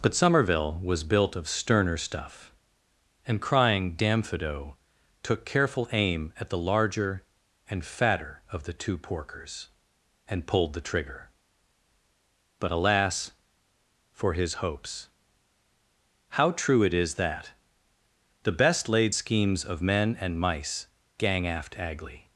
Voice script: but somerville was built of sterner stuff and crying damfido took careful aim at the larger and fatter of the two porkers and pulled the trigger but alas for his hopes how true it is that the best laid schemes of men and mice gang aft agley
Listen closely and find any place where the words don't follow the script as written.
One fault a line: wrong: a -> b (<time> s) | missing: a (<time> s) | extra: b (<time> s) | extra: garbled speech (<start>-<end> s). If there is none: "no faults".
no faults